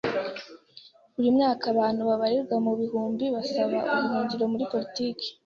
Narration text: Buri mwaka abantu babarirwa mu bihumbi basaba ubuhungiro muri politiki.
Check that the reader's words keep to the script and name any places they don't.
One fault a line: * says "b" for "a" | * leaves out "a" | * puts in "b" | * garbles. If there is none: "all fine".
all fine